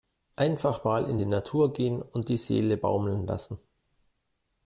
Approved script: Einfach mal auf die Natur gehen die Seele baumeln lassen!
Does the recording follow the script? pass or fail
fail